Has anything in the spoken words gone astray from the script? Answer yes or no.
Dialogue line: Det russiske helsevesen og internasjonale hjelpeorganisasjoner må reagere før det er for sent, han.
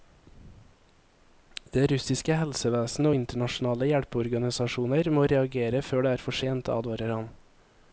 yes